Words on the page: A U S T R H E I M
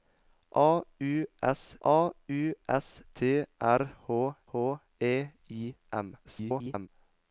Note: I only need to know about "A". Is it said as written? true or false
true